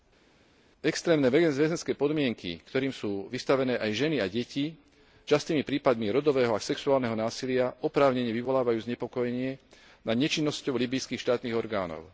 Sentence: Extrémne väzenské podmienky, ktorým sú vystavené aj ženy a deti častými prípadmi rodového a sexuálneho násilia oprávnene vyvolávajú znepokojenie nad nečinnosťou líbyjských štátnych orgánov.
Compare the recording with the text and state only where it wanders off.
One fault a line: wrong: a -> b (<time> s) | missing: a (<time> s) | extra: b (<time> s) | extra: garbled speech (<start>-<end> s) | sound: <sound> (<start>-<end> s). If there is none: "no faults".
no faults